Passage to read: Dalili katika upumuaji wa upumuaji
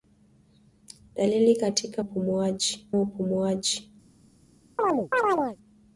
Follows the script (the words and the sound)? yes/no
no